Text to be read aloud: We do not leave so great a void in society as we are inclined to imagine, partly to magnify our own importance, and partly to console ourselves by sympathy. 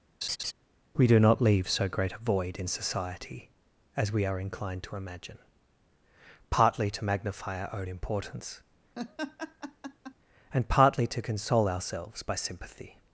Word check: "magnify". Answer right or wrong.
right